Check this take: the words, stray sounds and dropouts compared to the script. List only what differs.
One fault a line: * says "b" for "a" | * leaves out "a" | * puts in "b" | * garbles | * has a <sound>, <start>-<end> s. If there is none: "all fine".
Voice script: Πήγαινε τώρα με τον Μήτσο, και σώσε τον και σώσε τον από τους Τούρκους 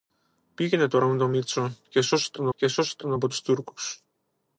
all fine